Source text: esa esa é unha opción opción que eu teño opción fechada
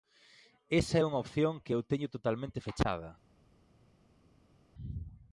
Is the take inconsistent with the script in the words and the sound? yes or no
yes